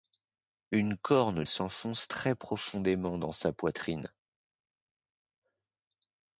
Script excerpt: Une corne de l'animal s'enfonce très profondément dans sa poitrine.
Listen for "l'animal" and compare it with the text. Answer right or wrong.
wrong